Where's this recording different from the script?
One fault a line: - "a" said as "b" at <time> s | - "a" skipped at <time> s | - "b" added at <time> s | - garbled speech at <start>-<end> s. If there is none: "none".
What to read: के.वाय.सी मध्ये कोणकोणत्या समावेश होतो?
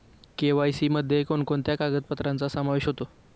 - "कागदपत्रांचा" added at 1.7 s